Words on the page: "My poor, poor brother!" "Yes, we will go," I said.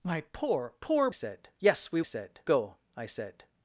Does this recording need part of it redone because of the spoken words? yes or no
yes